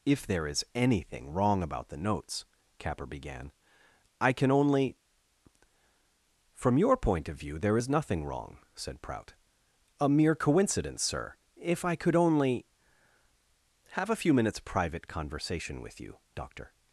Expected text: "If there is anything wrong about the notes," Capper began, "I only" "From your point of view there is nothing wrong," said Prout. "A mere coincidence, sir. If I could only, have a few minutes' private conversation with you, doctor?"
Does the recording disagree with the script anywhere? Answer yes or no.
yes